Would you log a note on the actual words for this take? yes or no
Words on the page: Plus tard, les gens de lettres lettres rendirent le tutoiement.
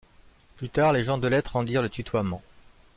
yes